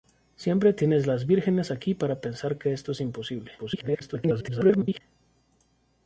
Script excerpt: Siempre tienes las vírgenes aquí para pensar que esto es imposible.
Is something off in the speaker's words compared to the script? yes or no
yes